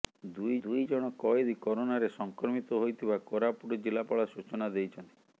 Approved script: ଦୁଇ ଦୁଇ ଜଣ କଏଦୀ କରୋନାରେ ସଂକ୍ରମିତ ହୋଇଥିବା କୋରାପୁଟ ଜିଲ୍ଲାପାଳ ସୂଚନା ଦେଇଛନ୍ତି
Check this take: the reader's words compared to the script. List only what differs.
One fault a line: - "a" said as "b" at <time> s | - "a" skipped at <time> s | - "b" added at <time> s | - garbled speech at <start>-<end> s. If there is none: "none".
none